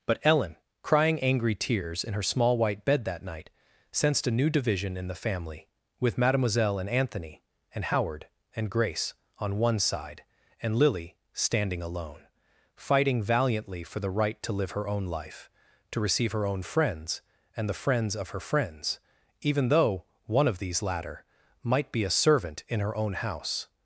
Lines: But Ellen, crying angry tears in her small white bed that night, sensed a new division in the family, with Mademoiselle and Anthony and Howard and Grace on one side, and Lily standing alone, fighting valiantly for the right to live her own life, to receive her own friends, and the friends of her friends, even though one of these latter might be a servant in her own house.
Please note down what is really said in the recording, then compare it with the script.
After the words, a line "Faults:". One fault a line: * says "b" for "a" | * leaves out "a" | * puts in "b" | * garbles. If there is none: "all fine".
But Ellen, crying angry tears in her small white bed that night, sensed a new division in the family, with Mademoiselle and Anthony and Howard and Grace on one side, and Lily standing alone, fighting valiantly for the right to live her own life, to receive her own friends, and the friends of her friends, even though one of these latter might be a servant in her own house.
Faults:
all fine